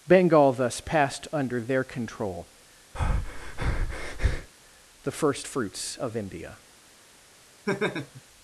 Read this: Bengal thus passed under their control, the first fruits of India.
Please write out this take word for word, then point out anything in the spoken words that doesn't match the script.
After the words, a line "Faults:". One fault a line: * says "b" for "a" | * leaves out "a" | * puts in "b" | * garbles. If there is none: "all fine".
Bengal thus passed under their control, the first fruits of India.
Faults:
all fine